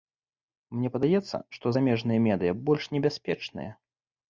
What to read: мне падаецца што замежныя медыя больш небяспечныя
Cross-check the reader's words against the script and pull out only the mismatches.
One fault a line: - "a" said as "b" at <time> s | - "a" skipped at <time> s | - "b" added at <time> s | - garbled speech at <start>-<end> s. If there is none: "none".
none